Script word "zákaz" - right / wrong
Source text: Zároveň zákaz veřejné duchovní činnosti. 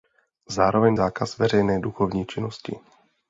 right